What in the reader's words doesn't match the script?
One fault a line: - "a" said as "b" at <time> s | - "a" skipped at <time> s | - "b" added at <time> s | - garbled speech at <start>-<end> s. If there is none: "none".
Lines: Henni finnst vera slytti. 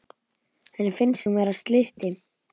- "hún" added at 1.3 s